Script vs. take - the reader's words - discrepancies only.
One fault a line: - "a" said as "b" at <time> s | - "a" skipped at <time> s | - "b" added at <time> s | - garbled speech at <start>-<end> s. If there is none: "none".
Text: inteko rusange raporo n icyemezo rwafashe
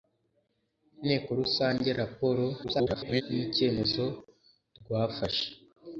- garbled speech at 2.6-3.2 s